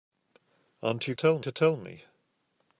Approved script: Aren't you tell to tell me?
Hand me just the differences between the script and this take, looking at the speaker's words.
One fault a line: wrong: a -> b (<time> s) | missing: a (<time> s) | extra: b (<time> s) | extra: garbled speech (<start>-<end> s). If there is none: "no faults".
no faults